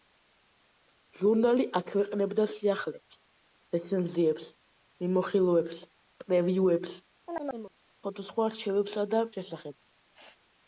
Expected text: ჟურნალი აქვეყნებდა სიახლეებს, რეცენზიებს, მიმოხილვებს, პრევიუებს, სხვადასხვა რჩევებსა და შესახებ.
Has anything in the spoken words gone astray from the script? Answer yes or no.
no